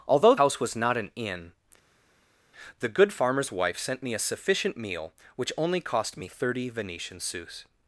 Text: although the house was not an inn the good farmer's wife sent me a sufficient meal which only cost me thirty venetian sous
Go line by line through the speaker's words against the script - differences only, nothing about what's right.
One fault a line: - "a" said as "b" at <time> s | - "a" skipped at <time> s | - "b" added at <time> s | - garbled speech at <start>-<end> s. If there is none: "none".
- "the" skipped at 0.3 s